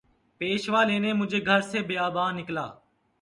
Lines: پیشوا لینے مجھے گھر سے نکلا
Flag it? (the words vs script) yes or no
yes